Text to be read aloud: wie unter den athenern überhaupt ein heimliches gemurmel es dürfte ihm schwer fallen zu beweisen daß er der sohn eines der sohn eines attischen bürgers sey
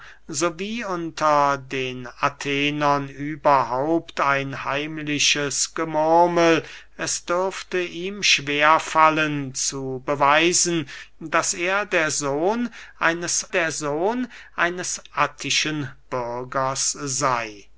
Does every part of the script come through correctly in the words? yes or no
yes